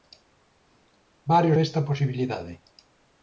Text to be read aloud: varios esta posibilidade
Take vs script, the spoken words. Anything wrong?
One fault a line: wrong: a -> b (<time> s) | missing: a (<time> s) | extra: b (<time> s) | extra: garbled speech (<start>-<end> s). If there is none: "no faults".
no faults